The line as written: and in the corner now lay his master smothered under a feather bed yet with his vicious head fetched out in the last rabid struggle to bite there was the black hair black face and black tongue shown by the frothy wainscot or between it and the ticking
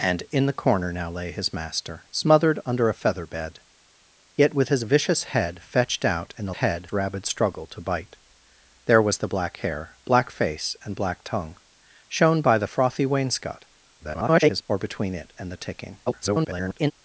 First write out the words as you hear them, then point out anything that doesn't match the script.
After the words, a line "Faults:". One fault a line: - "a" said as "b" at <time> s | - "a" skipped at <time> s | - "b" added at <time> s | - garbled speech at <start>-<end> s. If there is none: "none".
and in the corner now lay his master smothered under a feather bed yet with his vicious head fetched out in the head rabid struggle to bite there was the black hair black face and black tongue shown by the frothy wainscot [garbled] or between it and the ticking [garbled]
Faults:
- "last" said as "head" at 6.5 s
- garbled speech at 14.0-14.6 s
- garbled speech at 16.1-16.9 s